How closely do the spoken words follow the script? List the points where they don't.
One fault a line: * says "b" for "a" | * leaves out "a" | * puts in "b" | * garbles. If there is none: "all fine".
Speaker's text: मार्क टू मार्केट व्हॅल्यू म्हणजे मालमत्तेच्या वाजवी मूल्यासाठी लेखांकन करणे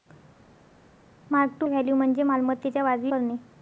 * leaves out "मार्केट"
* leaves out "मूल्यासाठी लेखांकन"